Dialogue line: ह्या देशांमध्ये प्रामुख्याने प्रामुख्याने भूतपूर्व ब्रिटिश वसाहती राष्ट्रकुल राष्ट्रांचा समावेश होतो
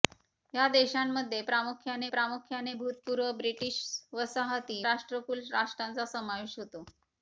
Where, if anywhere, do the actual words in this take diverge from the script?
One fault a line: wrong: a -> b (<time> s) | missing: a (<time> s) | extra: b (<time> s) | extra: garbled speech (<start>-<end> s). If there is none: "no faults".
no faults